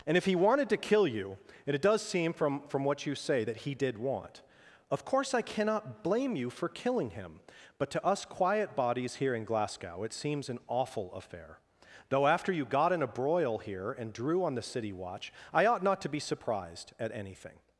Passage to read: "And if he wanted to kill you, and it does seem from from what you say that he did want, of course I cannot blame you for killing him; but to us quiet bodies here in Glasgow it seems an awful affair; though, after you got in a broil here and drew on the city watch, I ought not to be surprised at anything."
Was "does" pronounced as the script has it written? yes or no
yes